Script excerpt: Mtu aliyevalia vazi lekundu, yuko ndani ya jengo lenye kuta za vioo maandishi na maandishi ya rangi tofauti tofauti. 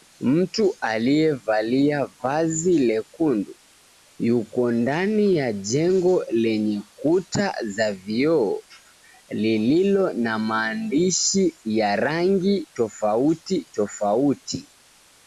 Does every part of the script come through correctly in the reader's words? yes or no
no